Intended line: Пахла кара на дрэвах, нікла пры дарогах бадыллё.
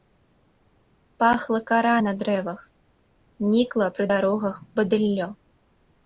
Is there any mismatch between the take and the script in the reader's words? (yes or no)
no